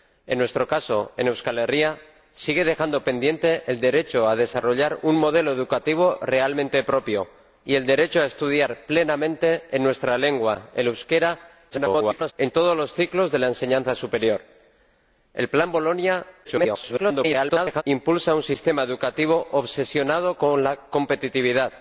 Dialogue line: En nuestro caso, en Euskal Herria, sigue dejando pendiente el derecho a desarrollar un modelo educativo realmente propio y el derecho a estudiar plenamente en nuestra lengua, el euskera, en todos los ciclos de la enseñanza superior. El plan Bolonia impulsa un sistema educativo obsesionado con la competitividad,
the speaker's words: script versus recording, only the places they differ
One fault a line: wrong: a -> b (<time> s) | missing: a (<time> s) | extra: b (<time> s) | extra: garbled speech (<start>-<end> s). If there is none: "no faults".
extra: garbled speech (11.7-12.3 s)
extra: garbled speech (16.4-17.8 s)